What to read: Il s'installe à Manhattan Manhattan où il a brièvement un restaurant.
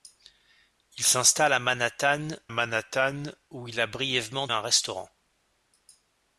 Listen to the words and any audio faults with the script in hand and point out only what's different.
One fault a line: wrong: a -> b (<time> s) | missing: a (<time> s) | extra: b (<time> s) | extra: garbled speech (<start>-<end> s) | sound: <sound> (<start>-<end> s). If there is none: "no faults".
no faults